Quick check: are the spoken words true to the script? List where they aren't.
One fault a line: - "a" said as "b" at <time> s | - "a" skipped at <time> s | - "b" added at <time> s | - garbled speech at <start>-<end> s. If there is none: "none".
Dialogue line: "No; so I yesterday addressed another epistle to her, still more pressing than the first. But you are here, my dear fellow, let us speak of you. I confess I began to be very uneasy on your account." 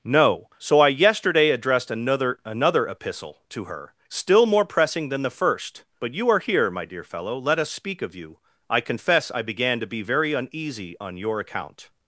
- "another" added at 2.4 s